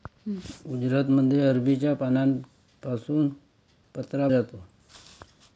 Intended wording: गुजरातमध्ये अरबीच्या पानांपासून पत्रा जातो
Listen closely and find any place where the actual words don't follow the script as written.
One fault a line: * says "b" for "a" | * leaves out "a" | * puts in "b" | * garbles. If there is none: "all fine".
all fine